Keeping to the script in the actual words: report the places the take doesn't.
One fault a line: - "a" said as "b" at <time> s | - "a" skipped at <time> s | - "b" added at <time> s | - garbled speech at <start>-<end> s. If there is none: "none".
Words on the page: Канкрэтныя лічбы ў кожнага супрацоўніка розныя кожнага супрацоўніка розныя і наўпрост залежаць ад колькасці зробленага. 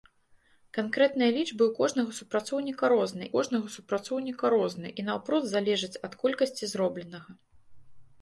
none